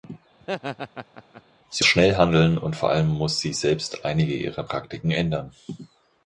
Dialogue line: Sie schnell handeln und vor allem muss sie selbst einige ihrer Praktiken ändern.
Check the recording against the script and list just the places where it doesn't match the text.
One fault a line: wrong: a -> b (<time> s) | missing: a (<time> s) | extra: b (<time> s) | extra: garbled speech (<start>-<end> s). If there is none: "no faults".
no faults